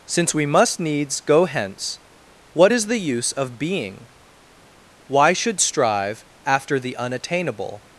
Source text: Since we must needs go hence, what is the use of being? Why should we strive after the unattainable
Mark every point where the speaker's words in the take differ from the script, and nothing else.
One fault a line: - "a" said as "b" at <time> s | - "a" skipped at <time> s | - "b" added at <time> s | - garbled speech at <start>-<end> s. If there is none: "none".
- "we" skipped at 5.6 s